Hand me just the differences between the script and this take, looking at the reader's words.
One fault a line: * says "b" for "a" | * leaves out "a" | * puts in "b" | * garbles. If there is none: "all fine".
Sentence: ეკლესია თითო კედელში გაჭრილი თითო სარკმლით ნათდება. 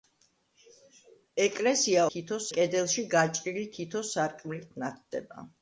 all fine